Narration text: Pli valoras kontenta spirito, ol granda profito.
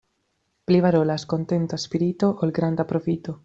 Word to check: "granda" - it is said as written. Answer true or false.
true